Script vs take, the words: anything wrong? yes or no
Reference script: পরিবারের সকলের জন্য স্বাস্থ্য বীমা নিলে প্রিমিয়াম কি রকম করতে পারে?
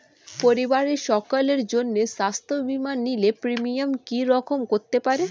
no